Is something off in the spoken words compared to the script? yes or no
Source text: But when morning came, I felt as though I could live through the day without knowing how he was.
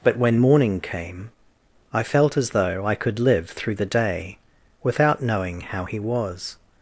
no